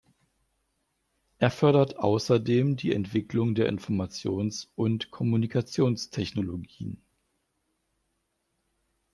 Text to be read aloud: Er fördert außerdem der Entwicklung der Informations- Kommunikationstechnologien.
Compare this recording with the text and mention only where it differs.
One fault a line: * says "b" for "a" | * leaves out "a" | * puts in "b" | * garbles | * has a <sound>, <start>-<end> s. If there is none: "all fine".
* says "die" for "der"
* puts in "und"